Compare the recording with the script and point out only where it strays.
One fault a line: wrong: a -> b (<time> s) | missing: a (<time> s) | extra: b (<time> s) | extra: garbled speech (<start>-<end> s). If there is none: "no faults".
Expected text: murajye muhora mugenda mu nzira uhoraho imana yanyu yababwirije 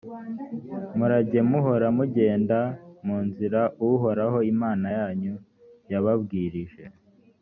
no faults